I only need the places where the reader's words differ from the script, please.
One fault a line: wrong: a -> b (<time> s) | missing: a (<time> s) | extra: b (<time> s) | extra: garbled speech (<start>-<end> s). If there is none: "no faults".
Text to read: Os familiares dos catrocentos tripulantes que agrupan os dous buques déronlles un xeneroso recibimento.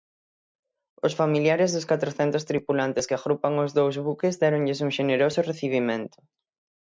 no faults